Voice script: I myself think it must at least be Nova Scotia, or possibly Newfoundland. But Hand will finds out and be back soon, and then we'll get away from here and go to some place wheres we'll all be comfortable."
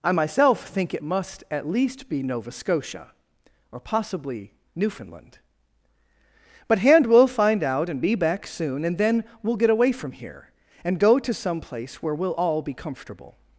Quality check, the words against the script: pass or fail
fail